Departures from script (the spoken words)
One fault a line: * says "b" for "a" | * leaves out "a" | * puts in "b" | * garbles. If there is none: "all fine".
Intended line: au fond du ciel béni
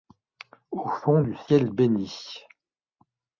all fine